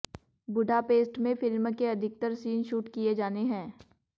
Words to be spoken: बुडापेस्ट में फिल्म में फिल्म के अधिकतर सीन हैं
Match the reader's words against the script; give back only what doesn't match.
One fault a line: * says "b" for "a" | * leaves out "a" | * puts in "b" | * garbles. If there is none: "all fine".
* leaves out "में फिल्म"
* puts in "शूट किए जाने"